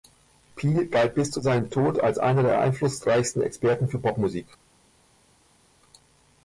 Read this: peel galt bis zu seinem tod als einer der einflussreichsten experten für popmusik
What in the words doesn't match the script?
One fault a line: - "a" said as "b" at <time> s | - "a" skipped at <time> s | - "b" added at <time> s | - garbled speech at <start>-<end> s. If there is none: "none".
none